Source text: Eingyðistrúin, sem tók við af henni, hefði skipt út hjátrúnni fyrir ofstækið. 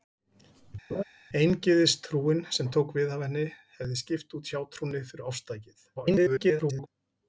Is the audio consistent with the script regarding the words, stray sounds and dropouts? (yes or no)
no